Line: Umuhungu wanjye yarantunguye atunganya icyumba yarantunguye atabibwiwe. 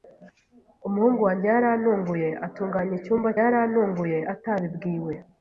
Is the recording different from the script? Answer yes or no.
no